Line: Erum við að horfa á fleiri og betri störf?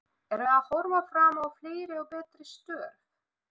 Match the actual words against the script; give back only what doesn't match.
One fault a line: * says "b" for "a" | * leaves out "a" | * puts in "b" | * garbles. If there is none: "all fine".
* puts in "fram"